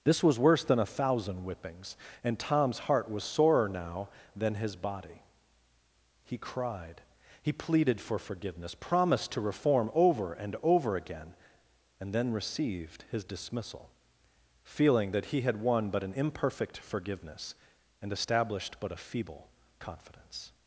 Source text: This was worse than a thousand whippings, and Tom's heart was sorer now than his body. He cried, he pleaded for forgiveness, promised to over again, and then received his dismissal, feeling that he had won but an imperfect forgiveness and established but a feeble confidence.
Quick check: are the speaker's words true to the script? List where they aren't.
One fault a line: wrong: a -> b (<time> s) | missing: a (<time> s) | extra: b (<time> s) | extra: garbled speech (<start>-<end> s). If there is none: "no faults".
extra: reform over and (9.4 s)